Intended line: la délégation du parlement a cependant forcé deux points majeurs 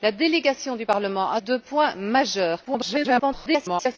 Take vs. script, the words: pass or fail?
fail